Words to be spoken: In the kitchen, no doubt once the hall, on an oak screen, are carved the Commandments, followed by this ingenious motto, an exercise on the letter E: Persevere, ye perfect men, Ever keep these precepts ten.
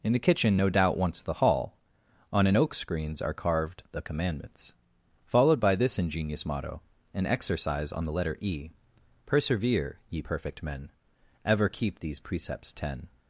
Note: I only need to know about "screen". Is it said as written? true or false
false